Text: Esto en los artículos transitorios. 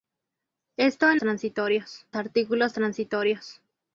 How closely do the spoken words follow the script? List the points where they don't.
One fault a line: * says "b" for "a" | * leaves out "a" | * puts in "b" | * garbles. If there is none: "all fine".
* says "transitorios" for "los"